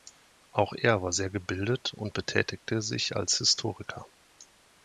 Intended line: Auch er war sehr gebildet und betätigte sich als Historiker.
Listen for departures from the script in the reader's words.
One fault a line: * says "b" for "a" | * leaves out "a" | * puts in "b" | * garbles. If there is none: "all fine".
all fine